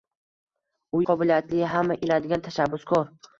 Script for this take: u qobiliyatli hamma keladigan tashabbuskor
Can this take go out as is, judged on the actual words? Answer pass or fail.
pass